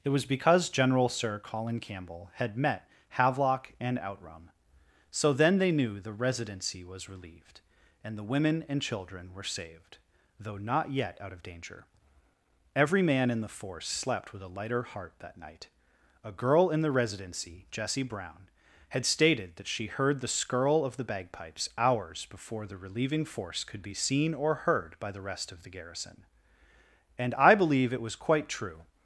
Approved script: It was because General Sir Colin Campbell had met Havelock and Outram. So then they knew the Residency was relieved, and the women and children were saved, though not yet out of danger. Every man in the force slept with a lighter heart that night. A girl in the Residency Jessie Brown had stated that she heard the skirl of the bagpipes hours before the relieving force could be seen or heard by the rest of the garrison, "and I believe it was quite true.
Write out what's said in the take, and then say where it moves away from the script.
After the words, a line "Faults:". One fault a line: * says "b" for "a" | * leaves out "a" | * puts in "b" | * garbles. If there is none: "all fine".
It was because General Sir Colin Campbell had met Havelock and Outram. So then they knew the Residency was relieved, and the women and children were saved, though not yet out of danger. Every man in the force slept with a lighter heart that night. A girl in the Residency Jessie Brown had stated that she heard the skirl of the bagpipes hours before the relieving force could be seen or heard by the rest of the garrison, "and I believe it was quite true.
Faults:
all fine